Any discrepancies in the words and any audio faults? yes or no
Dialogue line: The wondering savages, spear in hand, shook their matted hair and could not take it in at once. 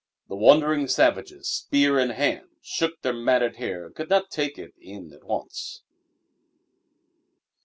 no